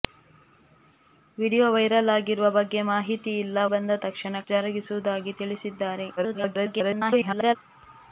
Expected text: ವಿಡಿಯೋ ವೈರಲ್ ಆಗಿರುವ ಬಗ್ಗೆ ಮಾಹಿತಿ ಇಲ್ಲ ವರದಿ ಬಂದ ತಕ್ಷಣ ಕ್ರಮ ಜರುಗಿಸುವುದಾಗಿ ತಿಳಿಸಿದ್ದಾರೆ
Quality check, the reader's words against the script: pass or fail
fail